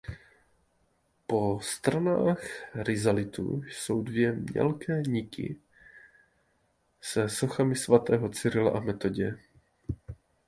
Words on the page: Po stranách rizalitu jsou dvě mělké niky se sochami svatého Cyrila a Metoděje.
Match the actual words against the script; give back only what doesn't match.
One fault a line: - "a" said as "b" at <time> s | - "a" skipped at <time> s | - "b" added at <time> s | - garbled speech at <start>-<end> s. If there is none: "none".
none